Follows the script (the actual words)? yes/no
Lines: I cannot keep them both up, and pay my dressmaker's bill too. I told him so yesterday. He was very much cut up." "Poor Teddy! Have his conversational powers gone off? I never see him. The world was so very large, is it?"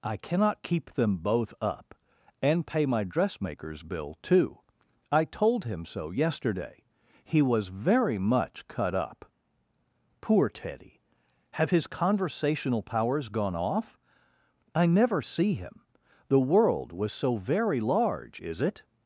yes